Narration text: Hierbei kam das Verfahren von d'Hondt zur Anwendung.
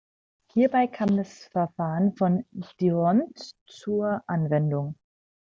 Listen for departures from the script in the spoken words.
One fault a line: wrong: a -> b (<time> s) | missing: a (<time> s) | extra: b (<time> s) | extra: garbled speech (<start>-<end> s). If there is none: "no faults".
no faults